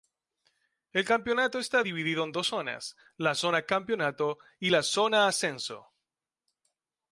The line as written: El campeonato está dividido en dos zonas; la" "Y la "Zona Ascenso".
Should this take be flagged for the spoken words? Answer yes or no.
yes